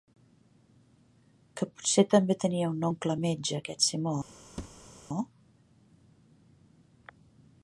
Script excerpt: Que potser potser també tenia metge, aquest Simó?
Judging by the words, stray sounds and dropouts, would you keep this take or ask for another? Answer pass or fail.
fail